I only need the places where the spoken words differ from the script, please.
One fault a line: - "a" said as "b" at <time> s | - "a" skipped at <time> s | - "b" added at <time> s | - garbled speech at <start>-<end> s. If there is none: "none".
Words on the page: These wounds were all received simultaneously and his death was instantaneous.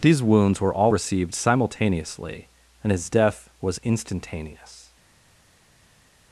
none